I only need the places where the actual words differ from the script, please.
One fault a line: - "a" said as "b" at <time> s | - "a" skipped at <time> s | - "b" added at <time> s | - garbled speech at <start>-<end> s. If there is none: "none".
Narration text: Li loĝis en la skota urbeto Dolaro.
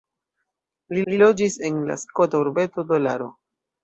- "li" added at 1.1 s